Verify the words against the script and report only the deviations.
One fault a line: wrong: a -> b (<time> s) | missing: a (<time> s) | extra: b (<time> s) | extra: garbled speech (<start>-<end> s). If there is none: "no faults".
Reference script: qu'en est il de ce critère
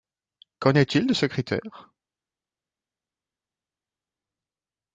no faults